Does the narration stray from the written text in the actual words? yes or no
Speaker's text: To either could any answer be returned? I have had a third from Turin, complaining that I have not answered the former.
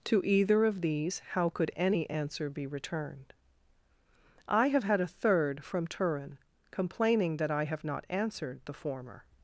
yes